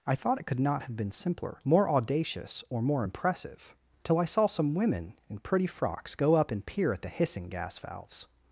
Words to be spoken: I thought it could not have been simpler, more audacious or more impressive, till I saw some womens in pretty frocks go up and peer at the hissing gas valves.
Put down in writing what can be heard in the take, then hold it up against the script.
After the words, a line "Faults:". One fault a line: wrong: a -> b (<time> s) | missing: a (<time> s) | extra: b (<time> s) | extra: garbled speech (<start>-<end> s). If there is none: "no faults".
I thought it could not have been simpler, more audacious or more impressive, till I saw some women in pretty frocks go up and peer at the hissing gas valves.
Faults:
wrong: womens -> women (4.7 s)